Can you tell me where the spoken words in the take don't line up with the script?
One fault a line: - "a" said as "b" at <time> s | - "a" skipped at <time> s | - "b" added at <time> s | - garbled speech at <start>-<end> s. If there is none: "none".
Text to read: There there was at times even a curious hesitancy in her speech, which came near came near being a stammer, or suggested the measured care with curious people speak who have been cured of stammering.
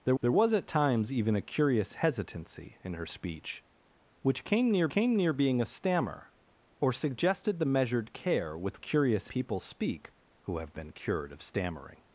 none